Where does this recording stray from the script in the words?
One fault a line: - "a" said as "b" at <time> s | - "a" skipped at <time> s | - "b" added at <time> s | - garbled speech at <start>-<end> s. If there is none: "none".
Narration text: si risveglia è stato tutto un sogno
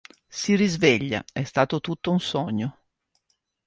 none